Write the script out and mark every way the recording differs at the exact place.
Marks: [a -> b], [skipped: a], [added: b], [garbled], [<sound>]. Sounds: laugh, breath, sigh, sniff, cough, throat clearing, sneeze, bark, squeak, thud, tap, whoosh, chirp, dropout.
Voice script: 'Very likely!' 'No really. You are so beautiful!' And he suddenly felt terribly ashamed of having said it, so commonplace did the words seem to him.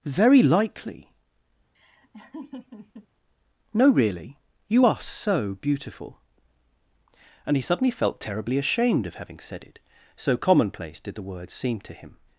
'Very likely!' [laugh] 'No really. You are so beautiful!' And he suddenly felt terribly ashamed of having said it, so commonplace did the words seem to him.